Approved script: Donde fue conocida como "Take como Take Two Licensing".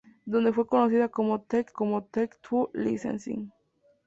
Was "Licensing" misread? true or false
false